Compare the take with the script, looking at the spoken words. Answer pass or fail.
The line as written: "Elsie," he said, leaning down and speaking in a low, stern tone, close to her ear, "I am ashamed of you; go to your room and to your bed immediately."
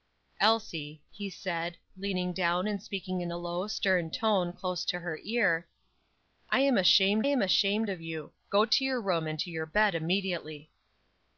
fail